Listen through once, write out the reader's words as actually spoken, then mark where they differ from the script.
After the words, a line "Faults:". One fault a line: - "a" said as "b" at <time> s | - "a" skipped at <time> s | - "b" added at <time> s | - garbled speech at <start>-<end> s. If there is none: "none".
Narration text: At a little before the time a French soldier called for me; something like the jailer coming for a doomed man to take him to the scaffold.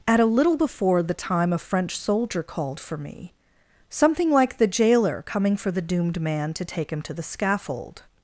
At a little before the time a French soldier called for me; something like the jailer coming for the doomed man to take him to the scaffold.
Faults:
- "a" said as "the" at 5.7 s